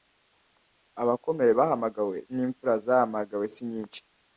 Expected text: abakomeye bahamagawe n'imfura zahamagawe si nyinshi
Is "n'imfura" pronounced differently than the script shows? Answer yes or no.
no